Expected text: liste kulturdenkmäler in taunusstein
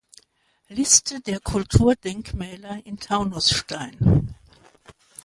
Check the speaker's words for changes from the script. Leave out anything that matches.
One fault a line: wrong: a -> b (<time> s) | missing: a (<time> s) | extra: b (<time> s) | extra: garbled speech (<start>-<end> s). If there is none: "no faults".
extra: der (1.2 s)